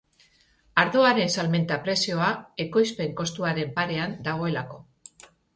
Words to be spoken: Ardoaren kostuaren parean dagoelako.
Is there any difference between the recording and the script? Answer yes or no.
yes